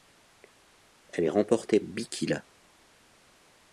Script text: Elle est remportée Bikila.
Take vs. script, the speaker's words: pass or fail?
pass